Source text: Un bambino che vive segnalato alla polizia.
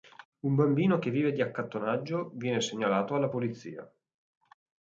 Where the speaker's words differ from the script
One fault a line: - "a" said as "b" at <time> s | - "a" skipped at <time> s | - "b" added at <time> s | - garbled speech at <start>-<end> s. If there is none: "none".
- "di accattonaggio viene" added at 1.3 s